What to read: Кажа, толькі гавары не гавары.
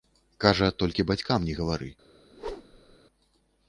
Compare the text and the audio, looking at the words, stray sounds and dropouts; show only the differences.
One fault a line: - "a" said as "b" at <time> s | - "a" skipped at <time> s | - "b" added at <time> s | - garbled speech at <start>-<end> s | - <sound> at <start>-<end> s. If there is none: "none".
- "гавары" said as "бацькам" at 1.1 s
- whoosh at 2.3-3.0 s